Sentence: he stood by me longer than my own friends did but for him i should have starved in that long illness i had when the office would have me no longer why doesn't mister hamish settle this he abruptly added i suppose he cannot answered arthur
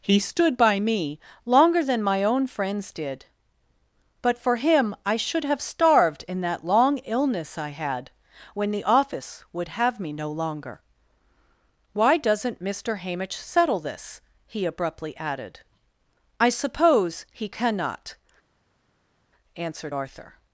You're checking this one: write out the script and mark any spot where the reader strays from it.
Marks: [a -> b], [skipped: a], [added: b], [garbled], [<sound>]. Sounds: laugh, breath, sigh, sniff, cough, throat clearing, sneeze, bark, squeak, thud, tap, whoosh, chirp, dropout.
he stood by me longer than my own friends did but for him i should have starved in that long illness i had when the office would have me no longer why doesn't mister hamish settle this he abruptly added i suppose he cannot answered arthur